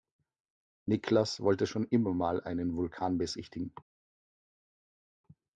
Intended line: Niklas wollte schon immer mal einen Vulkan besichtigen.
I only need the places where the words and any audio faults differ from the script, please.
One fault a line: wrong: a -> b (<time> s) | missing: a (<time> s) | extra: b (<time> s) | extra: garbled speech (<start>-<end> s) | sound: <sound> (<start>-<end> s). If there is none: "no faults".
no faults